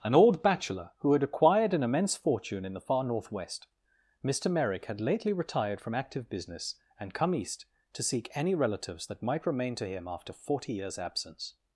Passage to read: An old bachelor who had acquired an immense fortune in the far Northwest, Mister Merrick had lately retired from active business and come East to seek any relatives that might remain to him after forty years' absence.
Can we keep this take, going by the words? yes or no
yes